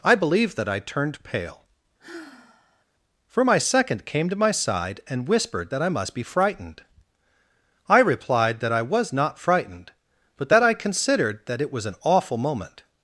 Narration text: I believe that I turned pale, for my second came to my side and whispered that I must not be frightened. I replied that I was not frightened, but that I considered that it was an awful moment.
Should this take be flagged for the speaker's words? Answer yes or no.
yes